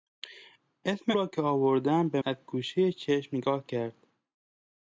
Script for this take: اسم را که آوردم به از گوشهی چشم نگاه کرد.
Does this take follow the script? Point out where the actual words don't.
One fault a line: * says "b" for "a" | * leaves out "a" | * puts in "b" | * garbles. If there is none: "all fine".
all fine